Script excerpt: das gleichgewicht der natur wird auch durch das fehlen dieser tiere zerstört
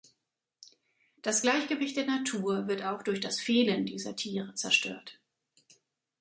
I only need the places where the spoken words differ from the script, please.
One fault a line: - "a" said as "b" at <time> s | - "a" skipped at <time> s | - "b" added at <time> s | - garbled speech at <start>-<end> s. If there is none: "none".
none